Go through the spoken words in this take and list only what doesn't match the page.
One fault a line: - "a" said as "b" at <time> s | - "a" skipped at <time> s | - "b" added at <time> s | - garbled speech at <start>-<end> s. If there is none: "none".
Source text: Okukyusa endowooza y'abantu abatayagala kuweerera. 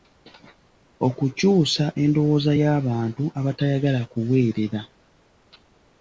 none